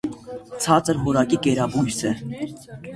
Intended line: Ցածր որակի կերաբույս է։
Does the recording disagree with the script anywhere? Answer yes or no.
no